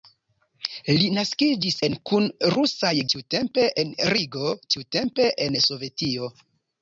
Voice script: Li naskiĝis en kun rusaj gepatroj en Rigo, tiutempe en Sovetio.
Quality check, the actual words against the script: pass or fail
fail